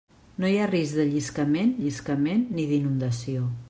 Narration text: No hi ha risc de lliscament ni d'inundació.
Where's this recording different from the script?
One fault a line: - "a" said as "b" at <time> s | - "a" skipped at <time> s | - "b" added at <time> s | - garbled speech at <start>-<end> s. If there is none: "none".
- "lliscament" added at 1.8 s